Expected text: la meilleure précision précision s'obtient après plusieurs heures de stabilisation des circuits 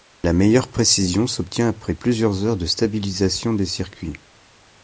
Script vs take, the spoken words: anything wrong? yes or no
yes